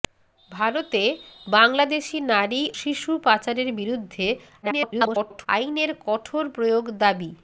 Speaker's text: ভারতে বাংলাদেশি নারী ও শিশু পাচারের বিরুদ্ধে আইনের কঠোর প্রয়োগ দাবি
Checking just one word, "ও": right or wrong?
wrong